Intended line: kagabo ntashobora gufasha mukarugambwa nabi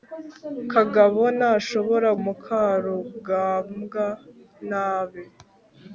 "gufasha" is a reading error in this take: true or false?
true